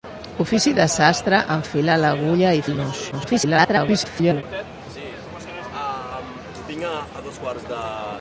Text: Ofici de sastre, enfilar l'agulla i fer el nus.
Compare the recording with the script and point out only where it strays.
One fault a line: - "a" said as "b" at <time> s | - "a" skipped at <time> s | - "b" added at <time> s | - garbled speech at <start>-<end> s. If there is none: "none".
- "fer" skipped at 2.6 s
- garbled speech at 3.1-4.4 s